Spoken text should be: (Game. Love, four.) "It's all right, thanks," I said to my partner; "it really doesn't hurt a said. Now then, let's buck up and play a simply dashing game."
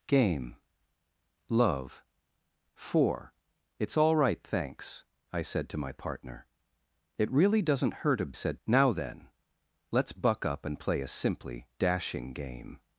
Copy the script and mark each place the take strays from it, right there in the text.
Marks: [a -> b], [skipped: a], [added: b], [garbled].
(Game. Love, four.) "It's all right, thanks," I said to my partner; "it really doesn't hurt a said. Now then, let's buck up and play a simply dashing game."